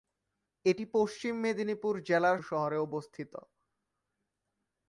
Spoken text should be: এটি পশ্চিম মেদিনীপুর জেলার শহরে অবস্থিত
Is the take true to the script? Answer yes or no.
yes